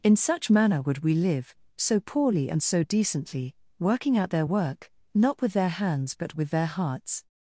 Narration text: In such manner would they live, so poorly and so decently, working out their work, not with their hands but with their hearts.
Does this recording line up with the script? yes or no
no